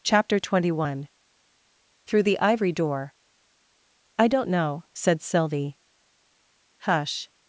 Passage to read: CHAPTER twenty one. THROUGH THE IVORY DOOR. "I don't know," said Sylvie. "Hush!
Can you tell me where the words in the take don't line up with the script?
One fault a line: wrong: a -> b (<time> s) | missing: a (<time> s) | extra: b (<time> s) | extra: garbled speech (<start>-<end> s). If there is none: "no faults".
no faults